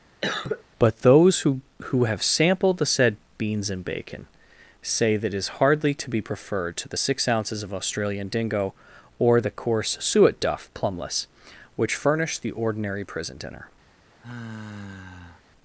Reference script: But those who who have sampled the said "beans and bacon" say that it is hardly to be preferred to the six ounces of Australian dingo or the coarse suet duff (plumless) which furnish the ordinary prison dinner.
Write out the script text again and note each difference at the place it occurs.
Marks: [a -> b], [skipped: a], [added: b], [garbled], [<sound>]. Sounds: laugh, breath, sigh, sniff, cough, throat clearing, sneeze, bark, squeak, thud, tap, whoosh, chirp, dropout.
[cough] But those who who have sampled the said "beans and bacon" say that it is hardly to be preferred to the six ounces of Australian dingo or the coarse suet duff (plumless) which furnish the ordinary prison dinner. [sigh]